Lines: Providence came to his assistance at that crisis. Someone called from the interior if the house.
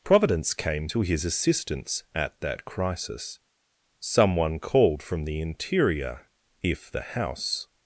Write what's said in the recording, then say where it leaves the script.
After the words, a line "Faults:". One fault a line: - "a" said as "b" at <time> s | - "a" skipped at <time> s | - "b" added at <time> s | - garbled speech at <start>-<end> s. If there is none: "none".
Providence came to his assistance at that crisis. Someone called from the interior if the house.
Faults:
none